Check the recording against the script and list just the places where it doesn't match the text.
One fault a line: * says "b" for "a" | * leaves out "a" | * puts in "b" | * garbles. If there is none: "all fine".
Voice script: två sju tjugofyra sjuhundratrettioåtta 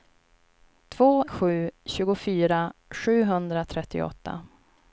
all fine